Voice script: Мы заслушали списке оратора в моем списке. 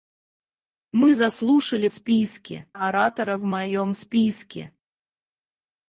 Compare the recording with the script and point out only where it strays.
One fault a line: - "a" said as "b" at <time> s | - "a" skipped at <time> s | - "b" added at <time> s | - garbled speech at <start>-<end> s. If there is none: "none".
none